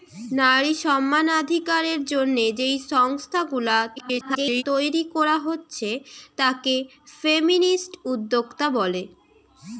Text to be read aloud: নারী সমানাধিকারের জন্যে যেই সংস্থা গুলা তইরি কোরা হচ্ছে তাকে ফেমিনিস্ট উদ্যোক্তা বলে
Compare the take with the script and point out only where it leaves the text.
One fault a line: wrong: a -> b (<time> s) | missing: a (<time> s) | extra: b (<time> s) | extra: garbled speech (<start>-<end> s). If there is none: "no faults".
extra: garbled speech (4.0-4.6 s)